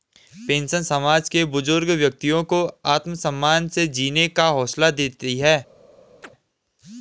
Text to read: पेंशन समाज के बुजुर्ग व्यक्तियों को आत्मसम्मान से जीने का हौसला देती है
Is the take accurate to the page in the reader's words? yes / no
yes